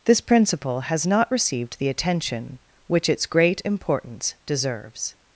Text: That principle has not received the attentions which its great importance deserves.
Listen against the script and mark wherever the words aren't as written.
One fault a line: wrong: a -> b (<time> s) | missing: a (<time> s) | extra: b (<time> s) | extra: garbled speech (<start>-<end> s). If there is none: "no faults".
wrong: That -> This (0.1 s)
wrong: attentions -> attention (1.9 s)